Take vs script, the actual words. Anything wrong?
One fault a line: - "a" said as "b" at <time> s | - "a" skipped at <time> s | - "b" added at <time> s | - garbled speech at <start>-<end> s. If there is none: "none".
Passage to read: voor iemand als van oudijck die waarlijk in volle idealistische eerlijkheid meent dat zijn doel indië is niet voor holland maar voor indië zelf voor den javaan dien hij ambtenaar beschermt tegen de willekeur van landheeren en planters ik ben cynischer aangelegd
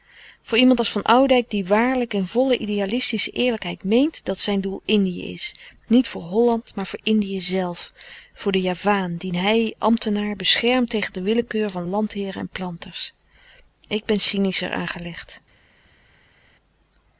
none